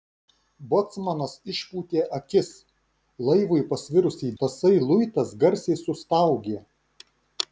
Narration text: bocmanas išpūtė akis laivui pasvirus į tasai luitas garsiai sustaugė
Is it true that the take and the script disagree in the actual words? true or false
false